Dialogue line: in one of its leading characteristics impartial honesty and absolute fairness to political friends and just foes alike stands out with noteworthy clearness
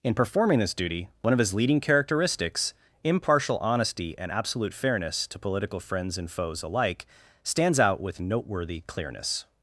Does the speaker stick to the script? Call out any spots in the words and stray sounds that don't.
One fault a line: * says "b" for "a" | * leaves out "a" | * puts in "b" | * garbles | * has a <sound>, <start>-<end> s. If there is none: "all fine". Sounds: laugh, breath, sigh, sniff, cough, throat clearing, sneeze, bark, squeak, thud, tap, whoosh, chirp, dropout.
* puts in "performing this duty"
* says "his" for "its"
* leaves out "just"